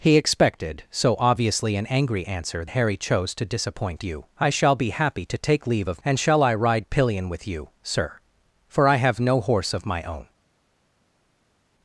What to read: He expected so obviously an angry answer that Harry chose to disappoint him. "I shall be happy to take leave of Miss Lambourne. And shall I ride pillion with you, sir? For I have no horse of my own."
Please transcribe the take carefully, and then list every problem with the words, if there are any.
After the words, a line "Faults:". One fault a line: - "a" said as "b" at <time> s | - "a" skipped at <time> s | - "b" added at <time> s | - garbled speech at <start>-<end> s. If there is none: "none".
He expected so obviously an angry answer Harry chose to disappoint you. "I shall be happy to take leave of. And shall I ride pillion with you, sir? For I have no horse of my own."
Faults:
- "that" skipped at 2.6 s
- "him" said as "you" at 4.0 s
- "Miss Lambourne" skipped at 6.0 s